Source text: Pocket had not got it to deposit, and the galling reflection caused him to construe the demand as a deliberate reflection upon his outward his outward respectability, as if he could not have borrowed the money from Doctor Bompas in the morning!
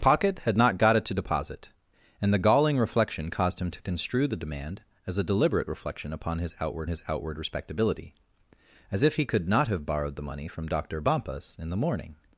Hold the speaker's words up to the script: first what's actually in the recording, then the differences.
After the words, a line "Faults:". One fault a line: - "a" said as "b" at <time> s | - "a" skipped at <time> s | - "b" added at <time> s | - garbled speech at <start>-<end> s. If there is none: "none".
Pocket had not got it to deposit, and the galling reflection caused him to construe the demand as a deliberate reflection upon his outward his outward respectability, as if he could not have borrowed the money from Doctor Bompas in the morning!
Faults:
none